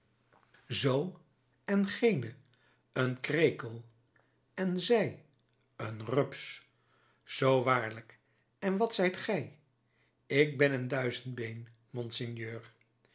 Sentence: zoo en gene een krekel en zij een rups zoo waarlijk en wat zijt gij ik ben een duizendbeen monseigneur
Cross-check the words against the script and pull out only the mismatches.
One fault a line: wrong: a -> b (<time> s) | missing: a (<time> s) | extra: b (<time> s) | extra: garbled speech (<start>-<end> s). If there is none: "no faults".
no faults